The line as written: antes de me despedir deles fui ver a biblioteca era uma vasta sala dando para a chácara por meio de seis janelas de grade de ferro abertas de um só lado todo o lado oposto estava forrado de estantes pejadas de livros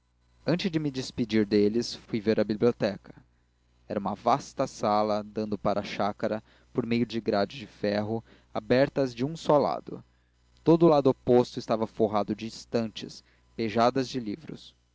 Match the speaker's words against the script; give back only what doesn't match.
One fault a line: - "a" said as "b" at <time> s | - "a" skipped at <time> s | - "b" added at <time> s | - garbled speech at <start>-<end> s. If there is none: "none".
- "seis janelas" skipped at 7.1 s